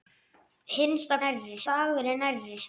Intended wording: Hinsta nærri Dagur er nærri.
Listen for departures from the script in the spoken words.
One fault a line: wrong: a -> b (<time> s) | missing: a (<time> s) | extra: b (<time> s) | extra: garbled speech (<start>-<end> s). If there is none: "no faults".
no faults